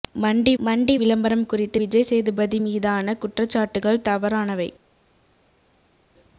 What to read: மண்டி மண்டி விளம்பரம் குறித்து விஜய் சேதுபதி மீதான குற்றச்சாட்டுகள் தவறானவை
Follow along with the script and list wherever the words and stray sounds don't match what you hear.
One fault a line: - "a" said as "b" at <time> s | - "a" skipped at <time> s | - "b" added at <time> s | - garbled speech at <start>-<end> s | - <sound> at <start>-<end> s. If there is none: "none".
none